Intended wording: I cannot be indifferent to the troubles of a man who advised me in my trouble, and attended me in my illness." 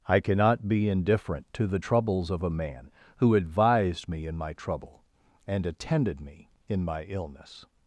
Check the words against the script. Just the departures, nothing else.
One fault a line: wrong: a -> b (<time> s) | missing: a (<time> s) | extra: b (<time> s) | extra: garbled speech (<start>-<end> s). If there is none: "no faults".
no faults